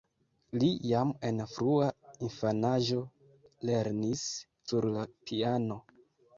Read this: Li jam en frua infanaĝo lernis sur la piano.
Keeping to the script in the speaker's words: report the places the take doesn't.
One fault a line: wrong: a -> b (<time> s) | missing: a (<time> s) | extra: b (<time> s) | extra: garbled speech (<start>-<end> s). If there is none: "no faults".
no faults